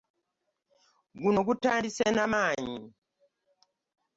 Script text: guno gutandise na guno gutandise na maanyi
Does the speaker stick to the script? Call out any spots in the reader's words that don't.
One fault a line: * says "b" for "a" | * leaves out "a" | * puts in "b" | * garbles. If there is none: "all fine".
* leaves out "guno gutandise na"